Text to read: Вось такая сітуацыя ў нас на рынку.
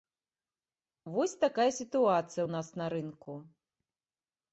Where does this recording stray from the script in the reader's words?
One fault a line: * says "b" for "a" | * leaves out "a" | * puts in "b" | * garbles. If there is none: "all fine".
all fine